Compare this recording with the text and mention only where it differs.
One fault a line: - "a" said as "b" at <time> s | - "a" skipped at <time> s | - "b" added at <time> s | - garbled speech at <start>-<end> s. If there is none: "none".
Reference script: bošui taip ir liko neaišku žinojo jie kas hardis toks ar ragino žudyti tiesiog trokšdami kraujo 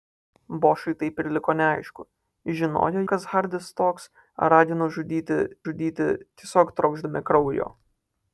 - "jie" skipped at 3.0 s
- "žudyti" added at 5.7 s